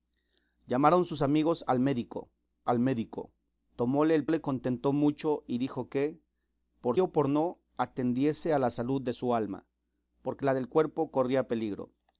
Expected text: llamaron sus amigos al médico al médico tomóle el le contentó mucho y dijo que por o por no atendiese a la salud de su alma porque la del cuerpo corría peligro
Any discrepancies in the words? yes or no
no